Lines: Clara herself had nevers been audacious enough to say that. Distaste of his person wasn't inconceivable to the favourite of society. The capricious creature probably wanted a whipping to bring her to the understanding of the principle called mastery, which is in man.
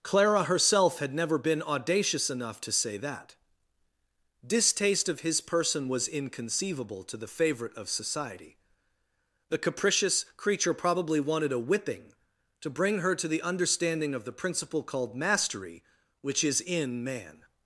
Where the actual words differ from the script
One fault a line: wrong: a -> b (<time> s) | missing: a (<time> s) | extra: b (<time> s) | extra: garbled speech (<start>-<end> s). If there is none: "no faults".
wrong: nevers -> never (1.1 s)
wrong: wasn't -> was (5.9 s)